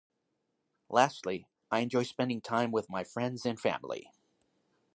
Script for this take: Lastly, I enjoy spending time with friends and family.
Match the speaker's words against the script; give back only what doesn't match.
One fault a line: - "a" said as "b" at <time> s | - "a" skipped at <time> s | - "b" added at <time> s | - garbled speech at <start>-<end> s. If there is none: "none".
- "my" added at 2.9 s